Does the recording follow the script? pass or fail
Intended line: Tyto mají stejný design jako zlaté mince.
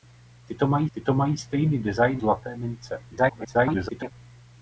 fail